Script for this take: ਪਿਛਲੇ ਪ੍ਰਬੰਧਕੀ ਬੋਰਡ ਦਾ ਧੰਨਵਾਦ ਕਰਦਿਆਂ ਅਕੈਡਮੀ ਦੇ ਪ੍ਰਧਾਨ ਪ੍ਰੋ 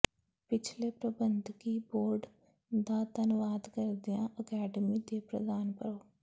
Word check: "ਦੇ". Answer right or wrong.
right